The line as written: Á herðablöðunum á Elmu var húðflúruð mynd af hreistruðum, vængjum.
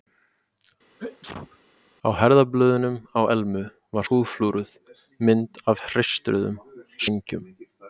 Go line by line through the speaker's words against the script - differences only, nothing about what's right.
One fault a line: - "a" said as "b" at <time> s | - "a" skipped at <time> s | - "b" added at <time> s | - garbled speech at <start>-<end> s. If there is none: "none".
none